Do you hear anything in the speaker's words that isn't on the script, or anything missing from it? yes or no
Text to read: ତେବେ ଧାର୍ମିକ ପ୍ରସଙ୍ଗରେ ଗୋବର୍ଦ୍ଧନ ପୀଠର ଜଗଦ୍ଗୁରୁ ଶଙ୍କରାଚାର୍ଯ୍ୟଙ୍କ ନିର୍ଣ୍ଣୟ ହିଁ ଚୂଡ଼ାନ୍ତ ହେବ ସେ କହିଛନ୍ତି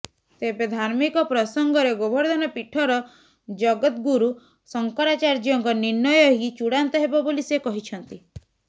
yes